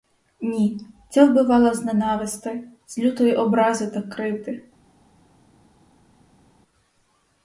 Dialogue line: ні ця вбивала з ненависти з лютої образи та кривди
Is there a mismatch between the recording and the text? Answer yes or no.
no